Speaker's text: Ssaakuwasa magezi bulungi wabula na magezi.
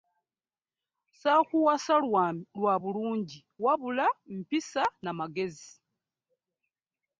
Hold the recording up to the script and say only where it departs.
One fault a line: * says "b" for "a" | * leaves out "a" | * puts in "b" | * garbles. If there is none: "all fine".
* says "lwa" for "magezi"
* puts in "mpisa"